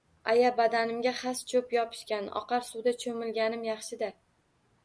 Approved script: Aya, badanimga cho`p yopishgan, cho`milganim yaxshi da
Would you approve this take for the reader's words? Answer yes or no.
no